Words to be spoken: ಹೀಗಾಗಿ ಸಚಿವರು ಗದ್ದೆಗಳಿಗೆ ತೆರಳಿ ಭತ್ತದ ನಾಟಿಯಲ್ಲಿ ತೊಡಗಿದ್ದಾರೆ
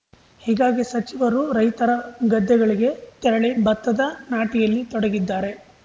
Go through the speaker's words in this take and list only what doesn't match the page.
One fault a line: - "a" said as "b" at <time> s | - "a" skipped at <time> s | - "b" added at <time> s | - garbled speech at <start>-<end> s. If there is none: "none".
- "ರೈತರ" added at 1.5 s